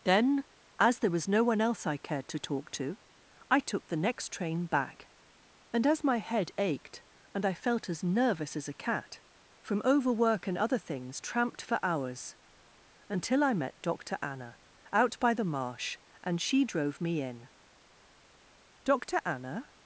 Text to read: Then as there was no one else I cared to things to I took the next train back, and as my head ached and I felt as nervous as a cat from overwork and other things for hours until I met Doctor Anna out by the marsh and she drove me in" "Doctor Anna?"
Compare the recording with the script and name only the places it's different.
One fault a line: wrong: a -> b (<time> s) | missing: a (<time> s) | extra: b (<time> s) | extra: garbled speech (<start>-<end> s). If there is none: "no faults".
wrong: things -> talk (2.4 s)
extra: tramped (11.2 s)